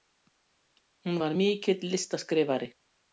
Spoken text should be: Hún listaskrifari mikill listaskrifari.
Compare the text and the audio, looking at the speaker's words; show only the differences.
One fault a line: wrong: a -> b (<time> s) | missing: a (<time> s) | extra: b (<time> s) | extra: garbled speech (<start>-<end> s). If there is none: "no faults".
wrong: listaskrifari -> var (1.2 s)